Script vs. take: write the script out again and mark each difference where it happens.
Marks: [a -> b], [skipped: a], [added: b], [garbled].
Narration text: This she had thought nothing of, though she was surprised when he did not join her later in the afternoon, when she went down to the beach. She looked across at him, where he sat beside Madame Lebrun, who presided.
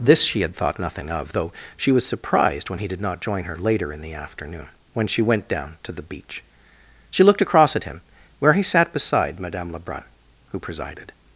This she had thought nothing of, though she was surprised when he did not join her later in the afternoon, when she went down to the beach. She looked across at him, where he sat beside Madame Lebrun, who presided.